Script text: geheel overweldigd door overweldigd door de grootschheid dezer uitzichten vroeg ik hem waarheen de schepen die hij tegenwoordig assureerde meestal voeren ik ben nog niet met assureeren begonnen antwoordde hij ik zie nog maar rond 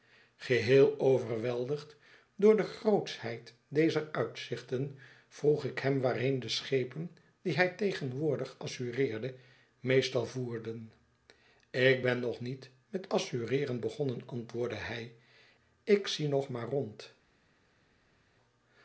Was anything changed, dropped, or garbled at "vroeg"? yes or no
no